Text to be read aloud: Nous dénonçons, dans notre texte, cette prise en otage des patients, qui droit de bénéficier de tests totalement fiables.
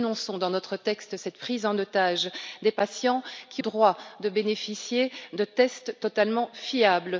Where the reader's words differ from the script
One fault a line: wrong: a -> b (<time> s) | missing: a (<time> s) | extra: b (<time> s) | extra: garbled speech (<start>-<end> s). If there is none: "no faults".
no faults